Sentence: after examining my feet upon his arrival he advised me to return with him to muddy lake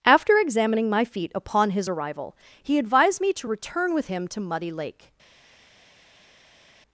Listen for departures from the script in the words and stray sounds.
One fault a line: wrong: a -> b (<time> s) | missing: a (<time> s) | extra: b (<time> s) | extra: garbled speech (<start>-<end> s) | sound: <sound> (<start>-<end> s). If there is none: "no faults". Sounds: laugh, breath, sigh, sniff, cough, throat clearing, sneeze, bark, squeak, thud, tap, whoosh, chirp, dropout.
no faults